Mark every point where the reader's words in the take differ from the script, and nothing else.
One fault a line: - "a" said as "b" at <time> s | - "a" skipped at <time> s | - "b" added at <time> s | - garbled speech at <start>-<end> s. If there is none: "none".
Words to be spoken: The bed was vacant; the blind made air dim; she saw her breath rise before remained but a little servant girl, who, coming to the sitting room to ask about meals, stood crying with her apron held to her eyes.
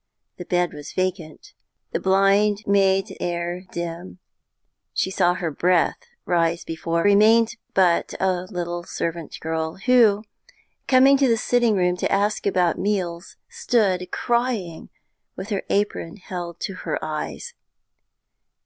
none